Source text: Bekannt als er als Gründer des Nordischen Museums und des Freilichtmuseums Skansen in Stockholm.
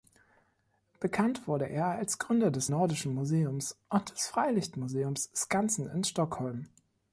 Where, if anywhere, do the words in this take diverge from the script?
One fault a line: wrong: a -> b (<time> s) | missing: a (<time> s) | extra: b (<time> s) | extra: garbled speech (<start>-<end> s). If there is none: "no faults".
wrong: als -> wurde (1.5 s)